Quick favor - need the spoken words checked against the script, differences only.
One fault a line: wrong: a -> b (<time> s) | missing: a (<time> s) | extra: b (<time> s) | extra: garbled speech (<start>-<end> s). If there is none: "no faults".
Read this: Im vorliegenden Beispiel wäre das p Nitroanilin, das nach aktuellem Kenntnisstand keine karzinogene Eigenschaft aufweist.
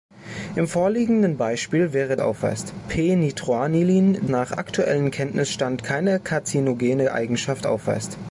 wrong: das -> aufweist (2.2 s)
missing: das (4.3 s)